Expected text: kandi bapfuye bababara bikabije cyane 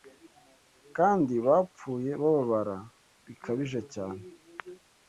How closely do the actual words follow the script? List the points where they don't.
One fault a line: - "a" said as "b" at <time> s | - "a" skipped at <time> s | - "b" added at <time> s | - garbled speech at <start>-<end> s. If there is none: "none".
none